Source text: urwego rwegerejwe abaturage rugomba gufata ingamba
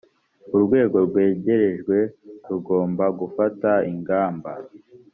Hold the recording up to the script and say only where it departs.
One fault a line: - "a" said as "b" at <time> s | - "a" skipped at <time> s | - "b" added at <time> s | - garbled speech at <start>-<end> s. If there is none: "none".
- "abaturage" skipped at 2.0 s